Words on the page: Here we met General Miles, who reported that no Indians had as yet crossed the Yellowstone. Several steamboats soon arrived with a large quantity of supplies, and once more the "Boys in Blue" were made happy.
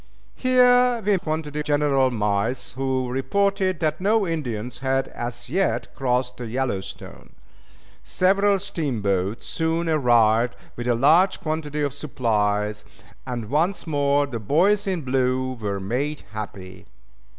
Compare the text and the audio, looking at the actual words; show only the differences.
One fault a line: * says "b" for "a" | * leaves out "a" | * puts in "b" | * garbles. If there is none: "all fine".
* says "quantity" for "met"